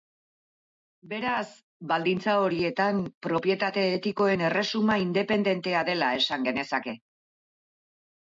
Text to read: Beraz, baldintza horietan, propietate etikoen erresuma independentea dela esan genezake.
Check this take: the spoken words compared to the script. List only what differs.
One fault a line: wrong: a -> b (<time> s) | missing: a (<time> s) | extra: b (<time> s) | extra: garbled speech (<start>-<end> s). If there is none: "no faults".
no faults